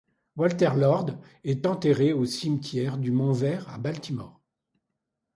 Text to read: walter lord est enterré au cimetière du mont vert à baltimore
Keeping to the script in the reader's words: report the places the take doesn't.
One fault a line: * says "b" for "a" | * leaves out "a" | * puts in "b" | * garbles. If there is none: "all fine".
all fine